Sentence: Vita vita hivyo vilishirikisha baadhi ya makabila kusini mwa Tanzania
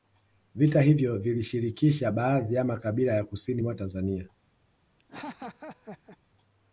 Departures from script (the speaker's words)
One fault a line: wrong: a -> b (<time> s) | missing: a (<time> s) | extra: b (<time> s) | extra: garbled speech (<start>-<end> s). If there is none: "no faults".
missing: vita (0.8 s)
extra: ya (3.1 s)